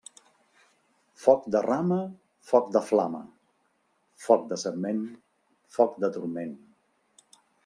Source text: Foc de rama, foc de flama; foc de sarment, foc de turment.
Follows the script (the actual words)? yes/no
yes